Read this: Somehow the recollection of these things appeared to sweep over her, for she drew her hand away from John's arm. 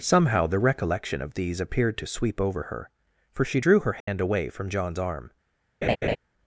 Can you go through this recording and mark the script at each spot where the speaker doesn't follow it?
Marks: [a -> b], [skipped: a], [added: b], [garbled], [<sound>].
Somehow the recollection of these [skipped: things] appeared to sweep over her, for she drew her hand [dropout] away from John's arm. [laugh]